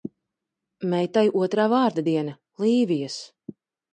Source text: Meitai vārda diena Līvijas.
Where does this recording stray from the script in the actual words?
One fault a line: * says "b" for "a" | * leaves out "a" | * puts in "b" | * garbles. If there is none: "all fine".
* puts in "otrā"